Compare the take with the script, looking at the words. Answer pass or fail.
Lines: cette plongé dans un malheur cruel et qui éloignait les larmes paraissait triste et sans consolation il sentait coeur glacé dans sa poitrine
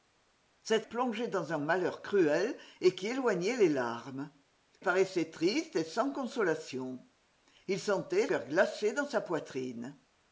pass